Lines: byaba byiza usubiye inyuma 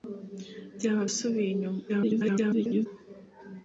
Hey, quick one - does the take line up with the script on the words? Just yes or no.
no